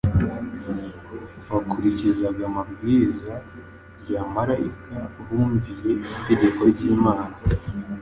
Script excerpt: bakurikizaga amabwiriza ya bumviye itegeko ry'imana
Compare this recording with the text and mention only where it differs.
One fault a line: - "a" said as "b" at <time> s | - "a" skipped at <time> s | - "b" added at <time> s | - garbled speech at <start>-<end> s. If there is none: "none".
- "marayika" added at 4.3 s